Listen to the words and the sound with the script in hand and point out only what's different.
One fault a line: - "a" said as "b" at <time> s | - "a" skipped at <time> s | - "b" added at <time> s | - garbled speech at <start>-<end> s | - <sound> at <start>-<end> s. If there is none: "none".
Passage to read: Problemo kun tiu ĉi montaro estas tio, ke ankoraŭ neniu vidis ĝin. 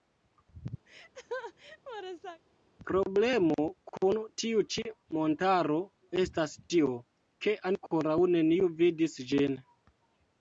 - laugh at 0.9-2.4 s